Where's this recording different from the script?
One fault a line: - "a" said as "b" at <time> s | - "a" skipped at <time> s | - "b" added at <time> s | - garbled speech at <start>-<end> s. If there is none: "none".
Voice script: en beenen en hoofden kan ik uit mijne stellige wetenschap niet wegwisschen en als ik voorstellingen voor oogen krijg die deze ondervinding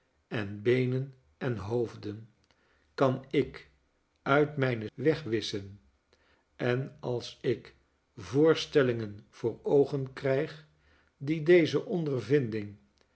- "stellige wetenschap niet" skipped at 4.9 s